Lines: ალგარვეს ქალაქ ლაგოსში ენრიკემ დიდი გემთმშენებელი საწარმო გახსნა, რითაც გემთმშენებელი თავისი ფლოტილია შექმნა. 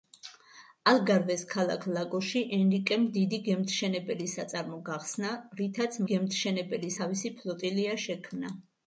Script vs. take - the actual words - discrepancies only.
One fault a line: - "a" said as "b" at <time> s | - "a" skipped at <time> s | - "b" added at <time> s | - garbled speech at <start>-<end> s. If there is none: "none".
none